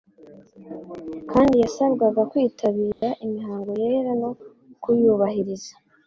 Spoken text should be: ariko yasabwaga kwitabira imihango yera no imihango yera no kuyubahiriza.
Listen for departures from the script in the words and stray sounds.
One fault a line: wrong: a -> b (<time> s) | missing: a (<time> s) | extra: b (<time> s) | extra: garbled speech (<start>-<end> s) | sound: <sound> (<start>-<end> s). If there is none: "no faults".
wrong: ariko -> kandi (1.3 s)
sound: dropout (2.9-3.0 s)
missing: imihango yera no (4.3 s)